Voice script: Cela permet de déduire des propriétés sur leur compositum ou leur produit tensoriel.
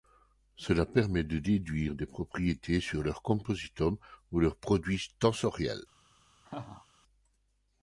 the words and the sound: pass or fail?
fail